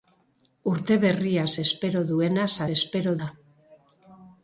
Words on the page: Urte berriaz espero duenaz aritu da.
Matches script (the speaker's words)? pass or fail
fail